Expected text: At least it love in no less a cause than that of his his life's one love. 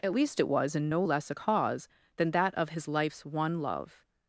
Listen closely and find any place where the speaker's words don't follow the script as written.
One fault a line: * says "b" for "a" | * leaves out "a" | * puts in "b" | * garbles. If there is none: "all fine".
* says "was" for "love"
* leaves out "his"